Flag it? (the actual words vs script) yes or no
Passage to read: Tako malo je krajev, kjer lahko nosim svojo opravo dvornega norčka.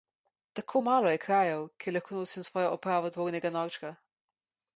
no